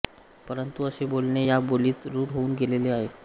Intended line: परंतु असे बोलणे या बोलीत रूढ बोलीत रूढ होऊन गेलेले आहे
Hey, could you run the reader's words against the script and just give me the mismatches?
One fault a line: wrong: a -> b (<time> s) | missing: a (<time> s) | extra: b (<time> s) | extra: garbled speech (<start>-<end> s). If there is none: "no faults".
missing: बोलीत रूढ (2.3 s)